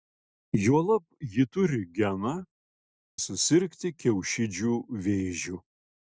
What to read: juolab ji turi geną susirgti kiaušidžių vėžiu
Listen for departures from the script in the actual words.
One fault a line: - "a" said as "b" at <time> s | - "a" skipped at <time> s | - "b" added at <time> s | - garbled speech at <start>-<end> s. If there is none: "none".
none